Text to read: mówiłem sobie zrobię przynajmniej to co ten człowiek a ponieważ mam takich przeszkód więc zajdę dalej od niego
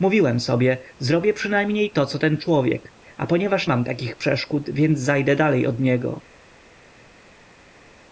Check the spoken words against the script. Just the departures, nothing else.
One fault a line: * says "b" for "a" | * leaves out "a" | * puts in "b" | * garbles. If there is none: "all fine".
all fine